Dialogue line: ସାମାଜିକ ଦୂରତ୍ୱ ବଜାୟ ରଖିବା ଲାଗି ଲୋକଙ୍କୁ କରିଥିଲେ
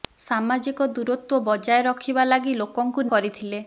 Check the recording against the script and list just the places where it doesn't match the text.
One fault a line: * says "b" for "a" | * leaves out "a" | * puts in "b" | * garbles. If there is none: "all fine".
all fine